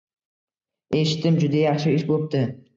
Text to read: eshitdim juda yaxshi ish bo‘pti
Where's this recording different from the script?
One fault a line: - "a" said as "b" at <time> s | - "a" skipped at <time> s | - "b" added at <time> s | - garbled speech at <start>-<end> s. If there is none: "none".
none